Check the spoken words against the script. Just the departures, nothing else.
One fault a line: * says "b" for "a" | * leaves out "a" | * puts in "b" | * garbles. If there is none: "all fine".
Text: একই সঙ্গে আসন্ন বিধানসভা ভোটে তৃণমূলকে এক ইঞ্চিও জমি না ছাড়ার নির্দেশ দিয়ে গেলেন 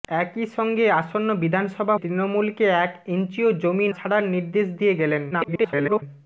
* leaves out "ভোটে"
* leaves out "না"
* garbles